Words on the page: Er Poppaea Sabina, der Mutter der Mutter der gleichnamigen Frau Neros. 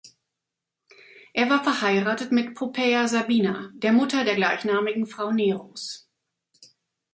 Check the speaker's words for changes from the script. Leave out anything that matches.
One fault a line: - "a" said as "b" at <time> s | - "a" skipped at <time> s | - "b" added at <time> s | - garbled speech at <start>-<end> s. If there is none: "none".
- "war verheiratet mit" added at 1.5 s
- "Mutter der" skipped at 4.3 s